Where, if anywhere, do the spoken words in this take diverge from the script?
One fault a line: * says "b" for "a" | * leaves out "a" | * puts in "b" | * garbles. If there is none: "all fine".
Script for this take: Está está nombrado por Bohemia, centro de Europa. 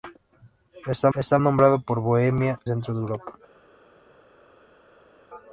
all fine